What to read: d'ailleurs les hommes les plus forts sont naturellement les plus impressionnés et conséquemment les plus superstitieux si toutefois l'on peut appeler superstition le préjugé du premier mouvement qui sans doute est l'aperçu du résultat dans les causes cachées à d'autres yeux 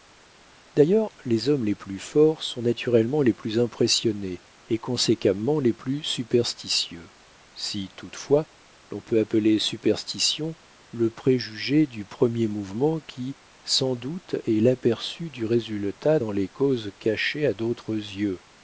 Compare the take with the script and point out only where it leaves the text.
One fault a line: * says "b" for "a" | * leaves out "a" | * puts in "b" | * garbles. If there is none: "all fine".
all fine